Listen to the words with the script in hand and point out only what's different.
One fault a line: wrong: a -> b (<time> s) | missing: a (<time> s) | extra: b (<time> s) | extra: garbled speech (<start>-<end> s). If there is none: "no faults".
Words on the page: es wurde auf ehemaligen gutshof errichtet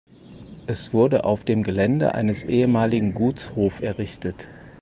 extra: dem gelände eines (1.4 s)